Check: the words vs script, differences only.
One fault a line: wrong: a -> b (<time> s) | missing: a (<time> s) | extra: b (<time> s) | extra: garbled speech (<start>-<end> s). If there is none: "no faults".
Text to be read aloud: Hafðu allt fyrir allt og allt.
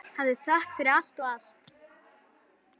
wrong: allt -> þökk (0.5 s)